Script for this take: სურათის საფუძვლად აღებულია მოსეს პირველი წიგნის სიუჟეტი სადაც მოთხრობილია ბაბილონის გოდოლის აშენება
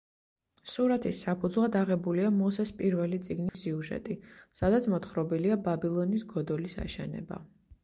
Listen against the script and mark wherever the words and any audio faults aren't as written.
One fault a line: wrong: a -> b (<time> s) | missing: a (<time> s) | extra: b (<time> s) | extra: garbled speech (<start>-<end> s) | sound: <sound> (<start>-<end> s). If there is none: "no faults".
sound: dropout (3.5-3.5 s)